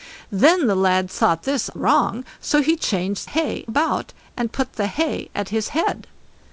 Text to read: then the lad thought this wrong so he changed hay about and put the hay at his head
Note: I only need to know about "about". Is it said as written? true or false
true